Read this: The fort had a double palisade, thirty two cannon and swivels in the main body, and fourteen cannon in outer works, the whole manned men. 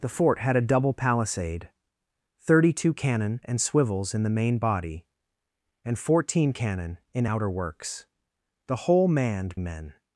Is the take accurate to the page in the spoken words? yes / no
yes